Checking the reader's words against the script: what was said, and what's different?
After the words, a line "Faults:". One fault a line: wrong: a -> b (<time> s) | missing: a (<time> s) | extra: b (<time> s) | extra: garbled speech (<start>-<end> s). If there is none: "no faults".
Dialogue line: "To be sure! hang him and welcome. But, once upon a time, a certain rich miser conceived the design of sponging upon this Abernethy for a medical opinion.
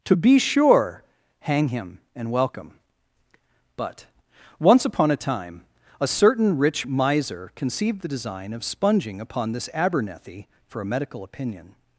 "To be sure! hang him and welcome. But, once upon a time, a certain rich miser conceived the design of sponging upon this Abernethy for a medical opinion.
Faults:
no faults